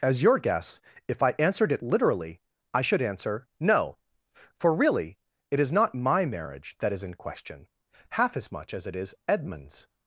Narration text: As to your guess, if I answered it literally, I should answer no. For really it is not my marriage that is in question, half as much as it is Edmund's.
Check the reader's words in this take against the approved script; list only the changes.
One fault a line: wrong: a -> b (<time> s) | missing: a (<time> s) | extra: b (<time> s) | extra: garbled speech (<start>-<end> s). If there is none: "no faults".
missing: to (0.2 s)